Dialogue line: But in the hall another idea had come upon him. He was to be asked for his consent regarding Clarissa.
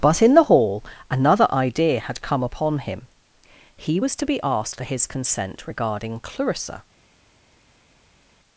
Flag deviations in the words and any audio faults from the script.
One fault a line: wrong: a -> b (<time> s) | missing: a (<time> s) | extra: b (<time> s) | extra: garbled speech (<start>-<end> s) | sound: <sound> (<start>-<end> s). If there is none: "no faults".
no faults